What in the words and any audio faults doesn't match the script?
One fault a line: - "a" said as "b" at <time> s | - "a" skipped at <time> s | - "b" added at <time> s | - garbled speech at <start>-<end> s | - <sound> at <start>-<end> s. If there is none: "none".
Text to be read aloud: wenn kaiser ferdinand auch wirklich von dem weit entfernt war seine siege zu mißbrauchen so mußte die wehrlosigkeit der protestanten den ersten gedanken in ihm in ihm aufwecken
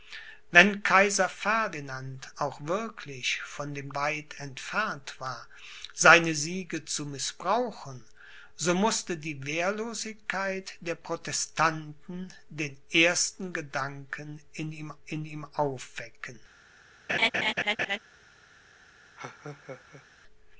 - laugh at 17.1-18.0 s
- laugh at 19.2-20.1 s